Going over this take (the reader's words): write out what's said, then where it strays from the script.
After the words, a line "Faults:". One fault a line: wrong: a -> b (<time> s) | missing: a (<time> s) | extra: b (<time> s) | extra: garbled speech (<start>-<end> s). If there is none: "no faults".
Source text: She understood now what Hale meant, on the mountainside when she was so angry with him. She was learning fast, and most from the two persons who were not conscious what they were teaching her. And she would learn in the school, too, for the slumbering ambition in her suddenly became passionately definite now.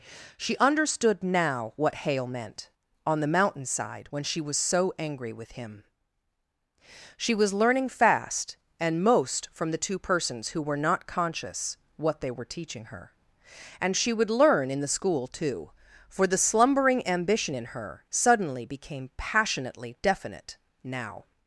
She understood now what Hale meant, on the mountainside when she was so angry with him. She was learning fast, and most from the two persons who were not conscious what they were teaching her. And she would learn in the school, too, for the slumbering ambition in her suddenly became passionately definite now.
Faults:
no faults